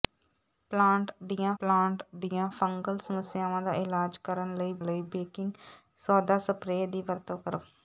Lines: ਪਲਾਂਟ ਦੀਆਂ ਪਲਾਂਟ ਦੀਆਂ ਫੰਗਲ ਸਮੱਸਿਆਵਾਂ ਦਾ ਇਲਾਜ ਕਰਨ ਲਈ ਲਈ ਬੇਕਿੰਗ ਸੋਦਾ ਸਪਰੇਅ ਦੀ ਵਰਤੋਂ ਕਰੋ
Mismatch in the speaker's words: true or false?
false